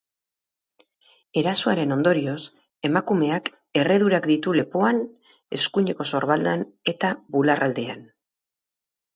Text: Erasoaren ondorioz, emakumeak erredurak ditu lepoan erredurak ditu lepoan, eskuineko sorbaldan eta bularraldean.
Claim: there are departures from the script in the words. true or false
true